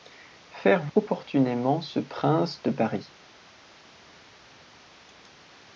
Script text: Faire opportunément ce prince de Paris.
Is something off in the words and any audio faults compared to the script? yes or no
no